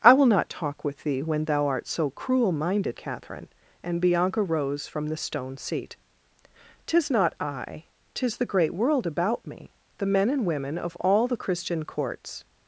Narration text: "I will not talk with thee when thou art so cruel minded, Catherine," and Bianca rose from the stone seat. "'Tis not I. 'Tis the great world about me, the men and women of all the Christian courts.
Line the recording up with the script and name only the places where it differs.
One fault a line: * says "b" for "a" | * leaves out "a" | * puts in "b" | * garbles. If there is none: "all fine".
all fine